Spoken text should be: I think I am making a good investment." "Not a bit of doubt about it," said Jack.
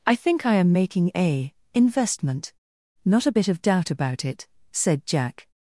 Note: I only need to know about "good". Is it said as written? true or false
false